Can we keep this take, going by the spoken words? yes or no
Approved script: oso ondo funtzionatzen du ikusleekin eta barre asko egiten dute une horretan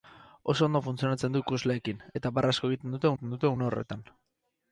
no